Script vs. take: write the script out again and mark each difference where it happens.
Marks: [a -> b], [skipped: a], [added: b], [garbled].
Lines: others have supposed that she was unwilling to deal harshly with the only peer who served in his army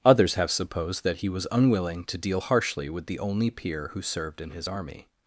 others have supposed that [she -> he] was unwilling to deal harshly with the only peer who served in his army